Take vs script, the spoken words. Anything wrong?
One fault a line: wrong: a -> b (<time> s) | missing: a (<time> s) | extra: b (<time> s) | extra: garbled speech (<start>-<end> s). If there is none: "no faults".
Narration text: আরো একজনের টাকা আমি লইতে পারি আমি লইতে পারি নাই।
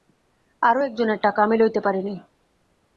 missing: আমি লইতে পারি (2.0 s)